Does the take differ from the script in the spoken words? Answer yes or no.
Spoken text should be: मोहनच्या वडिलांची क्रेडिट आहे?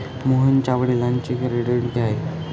no